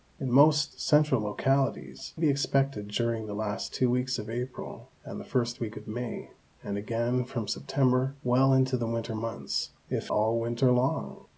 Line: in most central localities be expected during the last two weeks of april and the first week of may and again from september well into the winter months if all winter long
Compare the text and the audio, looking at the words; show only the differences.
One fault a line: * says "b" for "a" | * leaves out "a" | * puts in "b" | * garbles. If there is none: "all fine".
all fine